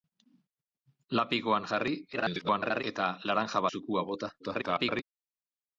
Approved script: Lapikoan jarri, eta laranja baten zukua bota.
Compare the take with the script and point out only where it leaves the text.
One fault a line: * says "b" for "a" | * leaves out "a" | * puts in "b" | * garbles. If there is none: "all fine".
* garbles
* leaves out "baten"
* garbles